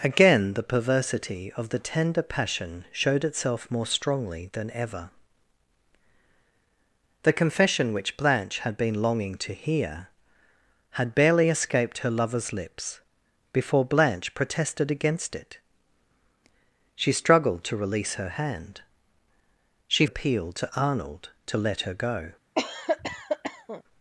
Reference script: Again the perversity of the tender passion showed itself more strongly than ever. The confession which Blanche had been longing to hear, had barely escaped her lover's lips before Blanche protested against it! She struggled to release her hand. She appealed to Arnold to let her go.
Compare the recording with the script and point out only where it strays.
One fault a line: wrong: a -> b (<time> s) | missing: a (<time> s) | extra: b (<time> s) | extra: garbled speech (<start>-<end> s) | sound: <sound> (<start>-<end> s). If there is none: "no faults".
sound: cough (22.6-23.8 s)